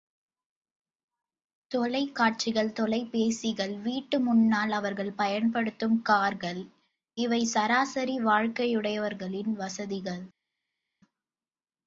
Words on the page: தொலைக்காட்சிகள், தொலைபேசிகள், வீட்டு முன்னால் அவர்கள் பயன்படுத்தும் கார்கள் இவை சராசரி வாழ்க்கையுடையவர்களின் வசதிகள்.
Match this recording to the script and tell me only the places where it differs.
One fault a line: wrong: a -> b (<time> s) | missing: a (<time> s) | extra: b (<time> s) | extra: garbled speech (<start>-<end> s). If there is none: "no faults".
no faults